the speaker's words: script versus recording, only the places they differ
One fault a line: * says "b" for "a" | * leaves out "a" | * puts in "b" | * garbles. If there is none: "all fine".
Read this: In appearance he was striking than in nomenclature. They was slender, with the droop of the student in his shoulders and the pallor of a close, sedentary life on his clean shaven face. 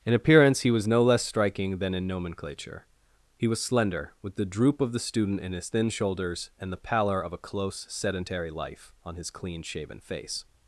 * puts in "no less"
* says "He" for "They"
* puts in "thin"